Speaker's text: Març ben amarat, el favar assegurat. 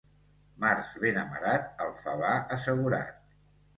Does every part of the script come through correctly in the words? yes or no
yes